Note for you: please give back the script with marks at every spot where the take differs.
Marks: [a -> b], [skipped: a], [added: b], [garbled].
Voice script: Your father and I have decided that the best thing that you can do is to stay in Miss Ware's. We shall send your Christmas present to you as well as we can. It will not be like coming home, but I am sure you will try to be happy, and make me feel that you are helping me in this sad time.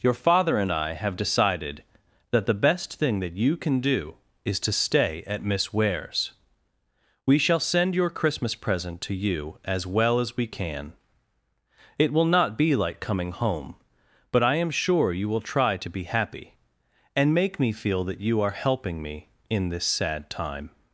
Your father and I have decided that the best thing that you can do is to stay [in -> at] Miss Ware's. We shall send your Christmas present to you as well as we can. It will not be like coming home, but I am sure you will try to be happy, and make me feel that you are helping me in this sad time.